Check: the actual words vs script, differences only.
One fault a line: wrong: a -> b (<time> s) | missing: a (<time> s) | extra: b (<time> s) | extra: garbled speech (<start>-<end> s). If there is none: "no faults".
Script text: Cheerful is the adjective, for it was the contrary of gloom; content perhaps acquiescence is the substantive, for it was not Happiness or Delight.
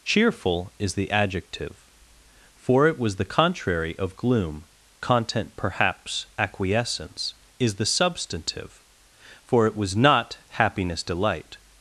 missing: or (11.0 s)